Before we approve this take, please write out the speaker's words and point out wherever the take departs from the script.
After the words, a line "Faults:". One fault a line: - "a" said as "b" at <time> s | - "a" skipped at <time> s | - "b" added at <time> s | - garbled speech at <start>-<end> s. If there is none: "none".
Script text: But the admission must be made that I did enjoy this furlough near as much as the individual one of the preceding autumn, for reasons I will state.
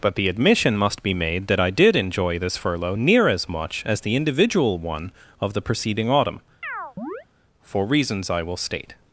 But the admission must be made that I did enjoy this furlough near as much as the individual one of the preceding autumn, for reasons I will state.
Faults:
none